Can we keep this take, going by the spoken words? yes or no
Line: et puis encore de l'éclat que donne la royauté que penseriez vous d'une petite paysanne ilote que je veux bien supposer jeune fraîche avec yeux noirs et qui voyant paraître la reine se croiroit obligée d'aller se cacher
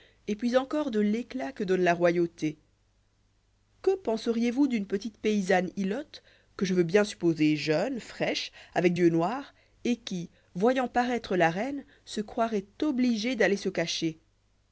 yes